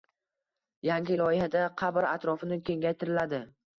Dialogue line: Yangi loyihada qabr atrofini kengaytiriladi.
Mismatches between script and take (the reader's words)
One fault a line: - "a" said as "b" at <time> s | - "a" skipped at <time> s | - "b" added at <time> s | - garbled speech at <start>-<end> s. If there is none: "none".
none